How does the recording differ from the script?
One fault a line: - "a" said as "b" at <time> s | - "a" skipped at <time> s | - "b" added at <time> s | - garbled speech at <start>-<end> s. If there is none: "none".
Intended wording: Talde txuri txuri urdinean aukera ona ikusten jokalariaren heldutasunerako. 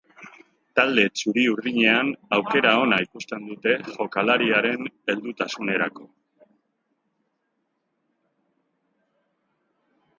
- "txuri" skipped at 1.4 s
- "dute" added at 3.5 s